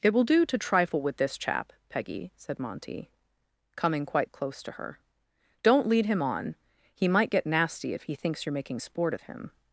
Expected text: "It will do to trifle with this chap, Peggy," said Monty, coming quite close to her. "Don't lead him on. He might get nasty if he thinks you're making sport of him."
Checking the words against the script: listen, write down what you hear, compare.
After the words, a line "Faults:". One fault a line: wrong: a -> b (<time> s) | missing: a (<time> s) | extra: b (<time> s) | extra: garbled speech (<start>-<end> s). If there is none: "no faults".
"It will do to trifle with this chap, Peggy," said Monty, coming quite close to her. "Don't lead him on. He might get nasty if he thinks you're making sport of him."
Faults:
no faults